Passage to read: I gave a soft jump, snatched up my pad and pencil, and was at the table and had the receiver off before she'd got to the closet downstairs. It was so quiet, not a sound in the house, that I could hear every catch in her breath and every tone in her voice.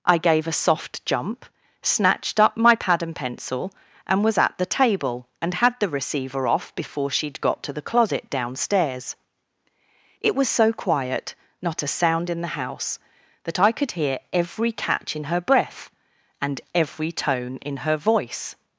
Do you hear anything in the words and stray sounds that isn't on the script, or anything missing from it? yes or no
no